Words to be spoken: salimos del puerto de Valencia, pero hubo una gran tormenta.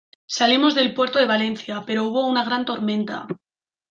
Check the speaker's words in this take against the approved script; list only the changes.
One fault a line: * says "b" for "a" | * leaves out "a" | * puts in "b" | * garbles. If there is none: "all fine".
all fine